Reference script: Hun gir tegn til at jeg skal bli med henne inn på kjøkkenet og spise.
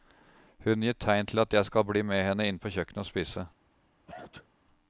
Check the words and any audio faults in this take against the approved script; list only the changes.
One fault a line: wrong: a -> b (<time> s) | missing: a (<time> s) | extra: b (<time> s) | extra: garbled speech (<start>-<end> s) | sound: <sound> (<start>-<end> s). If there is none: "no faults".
sound: sneeze (4.1-4.5 s)